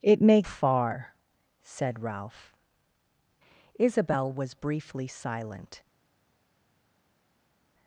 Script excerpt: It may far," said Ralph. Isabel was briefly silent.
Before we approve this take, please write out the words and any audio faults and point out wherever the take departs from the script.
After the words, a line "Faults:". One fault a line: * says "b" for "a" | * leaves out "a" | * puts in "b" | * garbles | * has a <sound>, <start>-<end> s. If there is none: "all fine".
It may far," said Ralph. Isabel was briefly silent.
Faults:
all fine